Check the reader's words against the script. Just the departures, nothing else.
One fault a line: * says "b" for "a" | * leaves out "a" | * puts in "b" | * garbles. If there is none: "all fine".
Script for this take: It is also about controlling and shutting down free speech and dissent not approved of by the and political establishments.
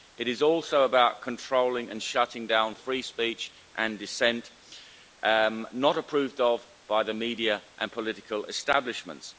* puts in "media"